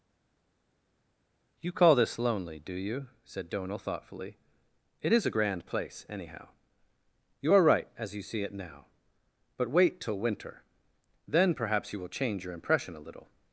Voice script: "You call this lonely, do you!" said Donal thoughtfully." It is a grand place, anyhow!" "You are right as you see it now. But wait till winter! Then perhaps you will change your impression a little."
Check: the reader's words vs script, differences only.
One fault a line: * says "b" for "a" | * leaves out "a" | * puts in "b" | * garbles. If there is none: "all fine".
all fine